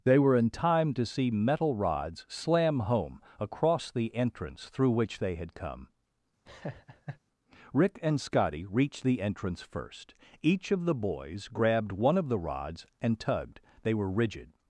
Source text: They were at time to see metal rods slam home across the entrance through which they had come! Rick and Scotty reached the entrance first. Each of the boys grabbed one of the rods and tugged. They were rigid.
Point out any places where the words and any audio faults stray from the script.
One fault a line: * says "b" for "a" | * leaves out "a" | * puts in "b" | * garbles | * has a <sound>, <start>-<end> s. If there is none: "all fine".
* says "in" for "at"
* has a laugh, 6.4-7.2 s